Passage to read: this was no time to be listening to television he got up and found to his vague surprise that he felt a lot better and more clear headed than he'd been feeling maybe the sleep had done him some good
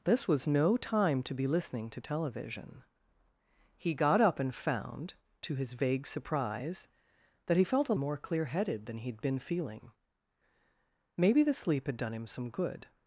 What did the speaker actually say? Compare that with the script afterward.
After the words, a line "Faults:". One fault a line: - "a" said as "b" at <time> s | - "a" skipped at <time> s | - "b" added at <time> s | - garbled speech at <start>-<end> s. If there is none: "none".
this was no time to be listening to television he got up and found to his vague surprise that he felt a more clear headed than he'd been feeling maybe the sleep had done him some good
Faults:
- "lot better and" skipped at 8.0 s